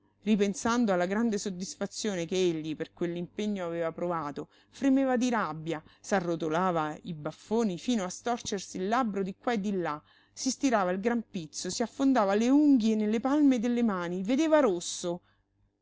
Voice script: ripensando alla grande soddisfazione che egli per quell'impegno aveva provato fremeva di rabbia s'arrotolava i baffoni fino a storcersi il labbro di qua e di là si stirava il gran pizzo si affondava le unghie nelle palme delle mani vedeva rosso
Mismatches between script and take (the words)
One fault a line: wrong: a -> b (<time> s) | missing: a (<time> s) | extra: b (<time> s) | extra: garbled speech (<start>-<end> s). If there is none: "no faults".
no faults